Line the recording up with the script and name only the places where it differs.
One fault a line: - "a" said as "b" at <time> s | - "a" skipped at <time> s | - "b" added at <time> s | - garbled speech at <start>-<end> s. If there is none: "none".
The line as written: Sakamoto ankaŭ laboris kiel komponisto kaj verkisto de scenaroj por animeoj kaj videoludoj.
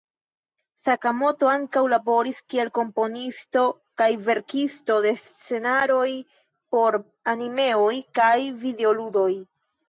none